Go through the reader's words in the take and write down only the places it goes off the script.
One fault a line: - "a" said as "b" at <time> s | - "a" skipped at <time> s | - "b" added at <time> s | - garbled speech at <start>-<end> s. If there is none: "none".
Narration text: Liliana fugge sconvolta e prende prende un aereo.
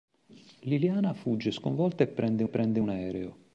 none